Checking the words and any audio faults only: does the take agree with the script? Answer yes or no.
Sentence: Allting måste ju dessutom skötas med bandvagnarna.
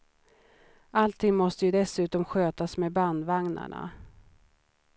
yes